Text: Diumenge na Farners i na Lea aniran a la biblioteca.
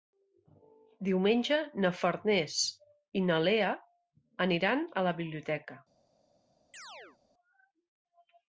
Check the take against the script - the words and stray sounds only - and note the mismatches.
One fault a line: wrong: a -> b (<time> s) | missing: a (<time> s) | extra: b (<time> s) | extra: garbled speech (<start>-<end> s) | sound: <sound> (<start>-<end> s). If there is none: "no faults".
sound: chirp (6.7-7.2 s)